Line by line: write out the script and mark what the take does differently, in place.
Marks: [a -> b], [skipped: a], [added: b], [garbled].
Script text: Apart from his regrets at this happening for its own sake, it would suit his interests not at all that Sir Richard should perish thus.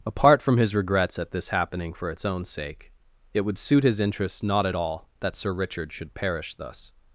Apart from his regrets at this happening for its own sake, it would suit his interests not at all that Sir Richard should perish thus.